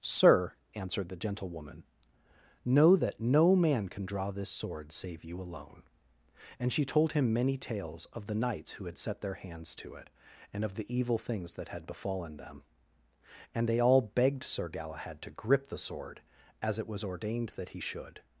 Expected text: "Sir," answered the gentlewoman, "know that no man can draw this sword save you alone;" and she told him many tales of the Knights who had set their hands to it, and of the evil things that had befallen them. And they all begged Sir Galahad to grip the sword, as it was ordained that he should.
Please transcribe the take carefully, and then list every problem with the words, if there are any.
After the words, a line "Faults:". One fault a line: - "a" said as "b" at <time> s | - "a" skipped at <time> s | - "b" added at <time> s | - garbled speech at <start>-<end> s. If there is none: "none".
"Sir," answered the gentlewoman, "know that no man can draw this sword save you alone;" and she told him many tales of the Knights who had set their hands to it, and of the evil things that had befallen them. And they all begged Sir Galahad to grip the sword, as it was ordained that he should.
Faults:
none